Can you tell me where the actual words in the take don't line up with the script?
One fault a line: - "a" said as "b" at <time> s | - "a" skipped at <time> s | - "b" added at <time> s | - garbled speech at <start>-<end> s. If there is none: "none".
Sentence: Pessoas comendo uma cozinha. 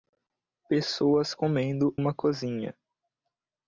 none